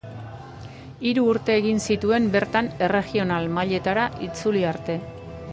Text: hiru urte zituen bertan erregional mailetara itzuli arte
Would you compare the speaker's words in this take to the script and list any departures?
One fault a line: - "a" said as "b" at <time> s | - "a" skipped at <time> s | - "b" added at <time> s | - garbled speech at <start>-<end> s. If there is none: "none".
- "egin" added at 1.6 s